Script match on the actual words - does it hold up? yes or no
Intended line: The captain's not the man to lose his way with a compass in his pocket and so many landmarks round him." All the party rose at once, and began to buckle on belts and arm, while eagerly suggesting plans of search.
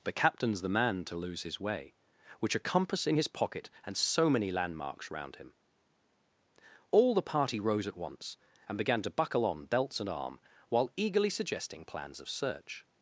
no